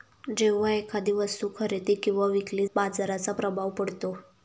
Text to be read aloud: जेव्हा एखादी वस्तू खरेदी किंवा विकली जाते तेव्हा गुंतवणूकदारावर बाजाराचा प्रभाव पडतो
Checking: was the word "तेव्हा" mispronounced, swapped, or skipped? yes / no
yes